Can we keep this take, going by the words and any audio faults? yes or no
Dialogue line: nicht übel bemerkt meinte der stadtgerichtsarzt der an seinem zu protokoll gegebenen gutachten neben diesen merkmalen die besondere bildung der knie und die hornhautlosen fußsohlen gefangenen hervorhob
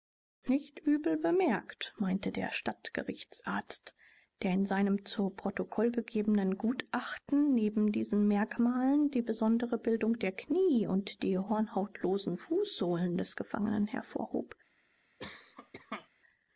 no